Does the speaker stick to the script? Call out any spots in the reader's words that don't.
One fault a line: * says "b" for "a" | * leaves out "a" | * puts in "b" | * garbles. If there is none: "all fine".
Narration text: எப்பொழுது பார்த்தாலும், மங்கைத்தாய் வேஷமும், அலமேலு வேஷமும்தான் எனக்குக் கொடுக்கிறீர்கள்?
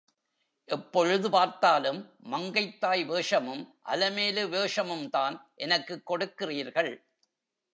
all fine